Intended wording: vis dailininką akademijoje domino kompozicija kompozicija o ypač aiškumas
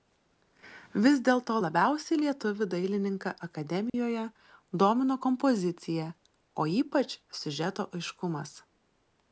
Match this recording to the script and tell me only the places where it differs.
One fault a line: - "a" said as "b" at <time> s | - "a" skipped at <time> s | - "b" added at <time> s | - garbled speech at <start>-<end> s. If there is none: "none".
- "dėlto labiausiai lietuvį" added at 1.3 s
- "kompozicija" skipped at 6.1 s
- "siužeto" added at 7.4 s